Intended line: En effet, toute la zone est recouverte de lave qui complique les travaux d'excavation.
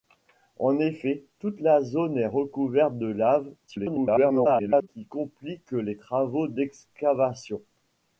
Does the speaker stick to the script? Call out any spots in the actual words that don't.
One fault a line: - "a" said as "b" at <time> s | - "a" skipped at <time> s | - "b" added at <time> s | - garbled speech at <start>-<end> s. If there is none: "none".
- garbled speech at 3.7-4.9 s